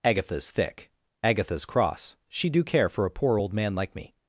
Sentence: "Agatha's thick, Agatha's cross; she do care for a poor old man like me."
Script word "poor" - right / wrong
right